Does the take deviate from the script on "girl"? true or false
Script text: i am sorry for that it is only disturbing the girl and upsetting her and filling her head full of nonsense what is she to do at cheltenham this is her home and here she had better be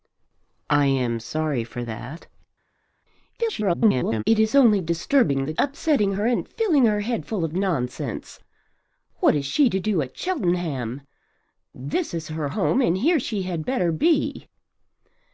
true